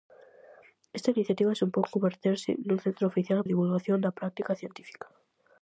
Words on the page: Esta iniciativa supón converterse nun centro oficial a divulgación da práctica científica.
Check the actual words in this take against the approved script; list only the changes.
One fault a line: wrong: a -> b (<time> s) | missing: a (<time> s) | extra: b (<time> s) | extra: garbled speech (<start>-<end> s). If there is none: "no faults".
no faults